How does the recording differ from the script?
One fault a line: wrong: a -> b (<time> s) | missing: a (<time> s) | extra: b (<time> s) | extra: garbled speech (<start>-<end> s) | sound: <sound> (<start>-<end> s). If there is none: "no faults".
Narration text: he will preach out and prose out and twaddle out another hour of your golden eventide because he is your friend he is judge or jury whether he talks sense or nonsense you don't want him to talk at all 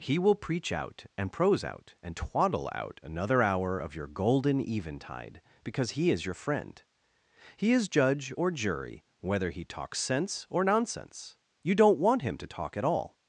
no faults